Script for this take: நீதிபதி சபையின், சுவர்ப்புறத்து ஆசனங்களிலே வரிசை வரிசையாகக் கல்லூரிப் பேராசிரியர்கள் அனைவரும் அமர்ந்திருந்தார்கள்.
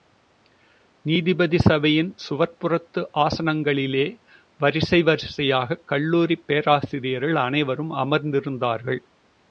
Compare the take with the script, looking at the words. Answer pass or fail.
pass